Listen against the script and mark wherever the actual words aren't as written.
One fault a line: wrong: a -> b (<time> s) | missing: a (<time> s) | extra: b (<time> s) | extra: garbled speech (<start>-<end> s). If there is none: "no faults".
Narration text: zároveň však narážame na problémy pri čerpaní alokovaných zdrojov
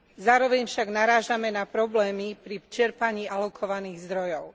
no faults